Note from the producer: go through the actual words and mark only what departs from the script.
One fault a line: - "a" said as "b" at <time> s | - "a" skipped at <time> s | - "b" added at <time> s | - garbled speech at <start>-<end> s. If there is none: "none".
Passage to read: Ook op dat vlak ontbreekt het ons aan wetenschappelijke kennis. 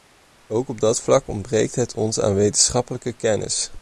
none